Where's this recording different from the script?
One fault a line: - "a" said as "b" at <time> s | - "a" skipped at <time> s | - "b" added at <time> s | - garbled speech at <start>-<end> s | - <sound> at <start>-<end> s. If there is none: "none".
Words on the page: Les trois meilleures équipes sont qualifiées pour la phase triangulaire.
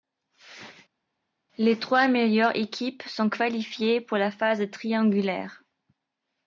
none